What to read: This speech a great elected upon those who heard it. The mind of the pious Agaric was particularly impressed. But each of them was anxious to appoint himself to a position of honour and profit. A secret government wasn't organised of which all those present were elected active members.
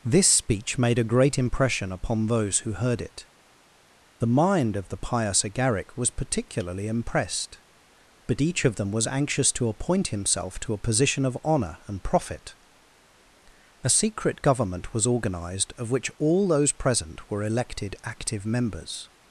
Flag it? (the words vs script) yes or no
yes